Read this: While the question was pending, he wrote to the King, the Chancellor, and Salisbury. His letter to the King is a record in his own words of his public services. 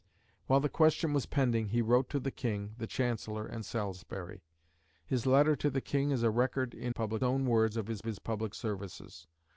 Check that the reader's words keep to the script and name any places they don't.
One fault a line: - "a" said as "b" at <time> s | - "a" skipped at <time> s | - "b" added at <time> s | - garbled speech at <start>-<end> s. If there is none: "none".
- "his" said as "public" at 6.9 s
- "his" added at 8.0 s